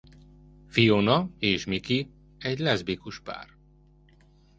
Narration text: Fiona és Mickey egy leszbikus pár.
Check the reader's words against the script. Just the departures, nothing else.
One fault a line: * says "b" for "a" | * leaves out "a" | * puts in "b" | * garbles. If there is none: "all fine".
all fine